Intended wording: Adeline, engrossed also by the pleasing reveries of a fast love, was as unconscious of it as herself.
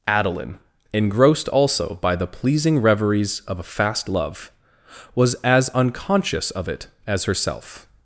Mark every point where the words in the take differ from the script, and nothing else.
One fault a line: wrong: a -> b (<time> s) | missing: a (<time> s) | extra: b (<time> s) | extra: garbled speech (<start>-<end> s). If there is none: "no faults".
no faults